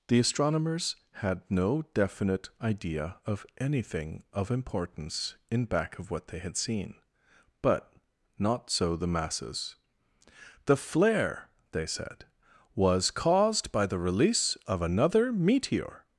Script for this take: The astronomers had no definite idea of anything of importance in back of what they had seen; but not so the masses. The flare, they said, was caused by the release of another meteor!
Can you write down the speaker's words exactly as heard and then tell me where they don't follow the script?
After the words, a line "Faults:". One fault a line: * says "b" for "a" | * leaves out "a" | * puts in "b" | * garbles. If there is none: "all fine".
The astronomers had no definite idea of anything of importance in back of what they had seen; but not so the masses. The flare, they said, was caused by the release of another meteor!
Faults:
all fine